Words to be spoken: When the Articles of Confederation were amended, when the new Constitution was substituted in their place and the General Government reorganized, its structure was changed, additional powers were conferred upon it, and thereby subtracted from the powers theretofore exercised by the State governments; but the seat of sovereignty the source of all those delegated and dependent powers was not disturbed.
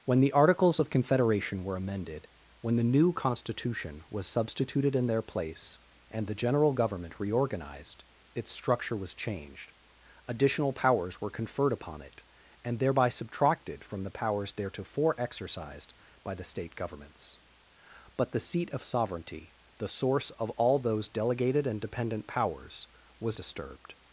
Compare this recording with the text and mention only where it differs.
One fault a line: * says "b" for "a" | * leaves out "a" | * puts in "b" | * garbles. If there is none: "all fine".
* leaves out "not"